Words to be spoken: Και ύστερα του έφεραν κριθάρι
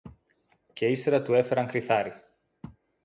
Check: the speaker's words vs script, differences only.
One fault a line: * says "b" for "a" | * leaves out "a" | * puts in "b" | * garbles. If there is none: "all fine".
all fine